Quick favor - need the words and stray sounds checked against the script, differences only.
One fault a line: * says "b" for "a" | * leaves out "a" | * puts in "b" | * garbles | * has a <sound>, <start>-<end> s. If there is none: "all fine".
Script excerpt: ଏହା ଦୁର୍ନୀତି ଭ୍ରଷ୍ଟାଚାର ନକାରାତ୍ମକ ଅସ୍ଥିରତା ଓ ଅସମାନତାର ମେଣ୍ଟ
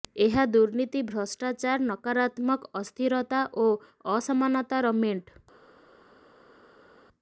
all fine